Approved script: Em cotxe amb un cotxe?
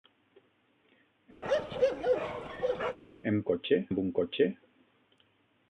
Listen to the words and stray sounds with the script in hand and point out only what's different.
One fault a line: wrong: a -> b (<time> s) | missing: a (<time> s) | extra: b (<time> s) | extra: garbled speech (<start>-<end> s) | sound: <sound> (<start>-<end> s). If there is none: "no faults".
sound: bark (1.4-3.0 s)